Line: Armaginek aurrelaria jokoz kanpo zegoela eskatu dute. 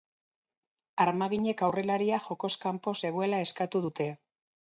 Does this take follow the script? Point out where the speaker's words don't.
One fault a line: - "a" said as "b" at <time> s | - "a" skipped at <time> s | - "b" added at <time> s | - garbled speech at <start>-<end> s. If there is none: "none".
none